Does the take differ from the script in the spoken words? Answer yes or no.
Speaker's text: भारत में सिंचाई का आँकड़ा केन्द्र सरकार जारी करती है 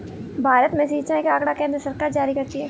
no